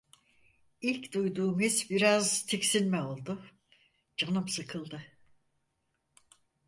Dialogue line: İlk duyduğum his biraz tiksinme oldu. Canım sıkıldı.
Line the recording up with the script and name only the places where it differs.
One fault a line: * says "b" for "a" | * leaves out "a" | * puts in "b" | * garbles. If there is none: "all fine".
all fine